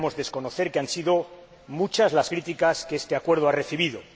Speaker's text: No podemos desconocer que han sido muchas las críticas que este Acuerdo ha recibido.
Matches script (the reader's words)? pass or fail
pass